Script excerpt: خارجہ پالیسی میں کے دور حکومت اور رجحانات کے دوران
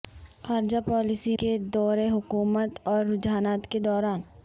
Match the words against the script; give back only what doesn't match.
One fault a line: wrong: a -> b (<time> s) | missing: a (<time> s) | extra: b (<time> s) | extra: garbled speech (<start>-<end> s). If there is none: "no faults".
missing: میں (1.4 s)